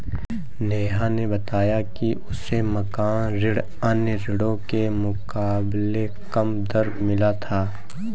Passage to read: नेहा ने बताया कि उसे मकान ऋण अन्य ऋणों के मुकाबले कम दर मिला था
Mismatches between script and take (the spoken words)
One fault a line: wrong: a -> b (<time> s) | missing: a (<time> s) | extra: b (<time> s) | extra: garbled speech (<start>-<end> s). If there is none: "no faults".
no faults